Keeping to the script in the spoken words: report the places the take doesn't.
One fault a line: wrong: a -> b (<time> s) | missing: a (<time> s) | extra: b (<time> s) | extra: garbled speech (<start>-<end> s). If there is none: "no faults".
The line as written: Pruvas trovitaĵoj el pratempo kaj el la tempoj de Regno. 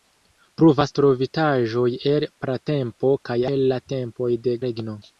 no faults